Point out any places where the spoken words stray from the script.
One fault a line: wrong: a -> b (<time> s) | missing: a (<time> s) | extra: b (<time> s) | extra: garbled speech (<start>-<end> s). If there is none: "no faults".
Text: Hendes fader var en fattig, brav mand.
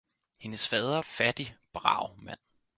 missing: var en (1.0 s)